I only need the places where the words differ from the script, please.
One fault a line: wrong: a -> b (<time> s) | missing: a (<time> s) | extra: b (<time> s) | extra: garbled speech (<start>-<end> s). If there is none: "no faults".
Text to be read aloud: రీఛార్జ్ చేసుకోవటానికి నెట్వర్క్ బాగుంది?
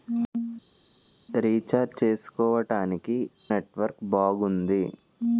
no faults